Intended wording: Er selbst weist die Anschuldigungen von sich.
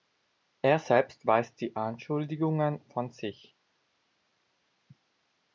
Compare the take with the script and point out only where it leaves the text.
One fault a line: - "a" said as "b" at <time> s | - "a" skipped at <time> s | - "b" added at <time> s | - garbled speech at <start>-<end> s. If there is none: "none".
none